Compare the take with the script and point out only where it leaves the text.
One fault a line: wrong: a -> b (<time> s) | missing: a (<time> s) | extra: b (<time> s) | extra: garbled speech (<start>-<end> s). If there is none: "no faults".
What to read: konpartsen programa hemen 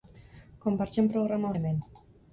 no faults